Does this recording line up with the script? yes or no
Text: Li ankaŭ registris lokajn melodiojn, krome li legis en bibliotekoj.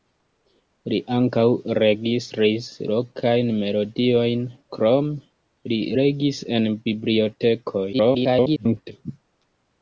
no